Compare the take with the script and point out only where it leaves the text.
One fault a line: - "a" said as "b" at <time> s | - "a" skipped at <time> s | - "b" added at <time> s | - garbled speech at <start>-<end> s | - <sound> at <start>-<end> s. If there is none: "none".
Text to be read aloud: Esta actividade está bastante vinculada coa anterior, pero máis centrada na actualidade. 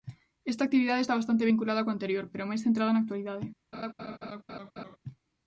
- laugh at 3.7-5.0 s